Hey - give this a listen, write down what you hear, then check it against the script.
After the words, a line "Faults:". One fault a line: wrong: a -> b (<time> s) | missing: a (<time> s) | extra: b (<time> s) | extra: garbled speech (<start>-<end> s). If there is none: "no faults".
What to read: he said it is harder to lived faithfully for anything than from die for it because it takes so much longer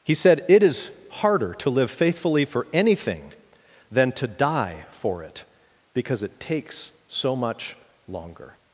he said it is harder to live faithfully for anything than to die for it because it takes so much longer
Faults:
wrong: lived -> live (1.7 s)
wrong: from -> to (4.1 s)